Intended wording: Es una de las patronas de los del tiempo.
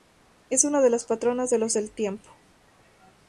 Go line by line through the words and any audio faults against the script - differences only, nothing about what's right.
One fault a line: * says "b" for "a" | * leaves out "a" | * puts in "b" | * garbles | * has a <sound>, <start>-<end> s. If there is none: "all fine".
all fine